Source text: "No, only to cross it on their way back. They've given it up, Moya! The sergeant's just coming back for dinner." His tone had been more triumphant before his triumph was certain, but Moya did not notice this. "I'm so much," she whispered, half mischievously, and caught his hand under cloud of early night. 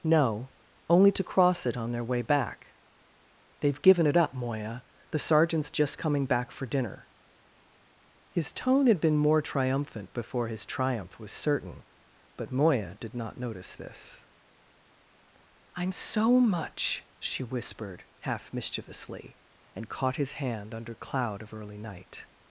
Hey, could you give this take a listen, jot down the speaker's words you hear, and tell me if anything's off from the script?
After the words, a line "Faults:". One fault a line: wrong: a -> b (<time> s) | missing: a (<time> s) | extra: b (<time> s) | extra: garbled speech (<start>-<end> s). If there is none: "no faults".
"No, only to cross it on their way back. They've given it up, Moya! The sergeant's just coming back for dinner." His tone had been more triumphant before his triumph was certain, but Moya did not notice this. "I'm so much," she whispered, half mischievously, and caught his hand under cloud of early night.
Faults:
no faults